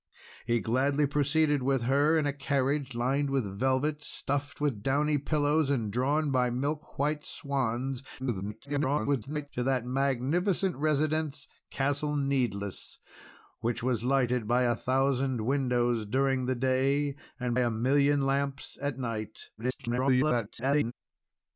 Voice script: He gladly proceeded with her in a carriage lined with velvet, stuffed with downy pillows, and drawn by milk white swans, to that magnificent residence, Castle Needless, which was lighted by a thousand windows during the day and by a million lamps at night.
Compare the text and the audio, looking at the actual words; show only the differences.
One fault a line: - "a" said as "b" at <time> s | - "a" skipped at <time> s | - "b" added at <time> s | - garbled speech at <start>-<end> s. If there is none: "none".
- garbled speech at 8.2-9.5 s
- "by" skipped at 17.6 s
- garbled speech at 19.6-20.9 s